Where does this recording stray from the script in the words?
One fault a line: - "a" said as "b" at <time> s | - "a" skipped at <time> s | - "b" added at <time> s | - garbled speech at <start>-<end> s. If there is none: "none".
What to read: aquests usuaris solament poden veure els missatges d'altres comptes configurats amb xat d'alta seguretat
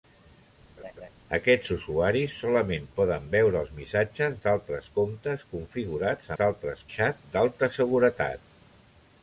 - "amb" said as "d'altres" at 6.4 s